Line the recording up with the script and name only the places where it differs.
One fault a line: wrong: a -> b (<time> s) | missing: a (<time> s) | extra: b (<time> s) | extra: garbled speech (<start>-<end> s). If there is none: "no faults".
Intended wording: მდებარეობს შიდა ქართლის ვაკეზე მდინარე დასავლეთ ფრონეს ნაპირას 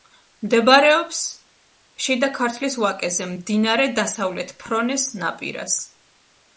no faults